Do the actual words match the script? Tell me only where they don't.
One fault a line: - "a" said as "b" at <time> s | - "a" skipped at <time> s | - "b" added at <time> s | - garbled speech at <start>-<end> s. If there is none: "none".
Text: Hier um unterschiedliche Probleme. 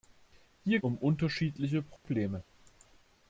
none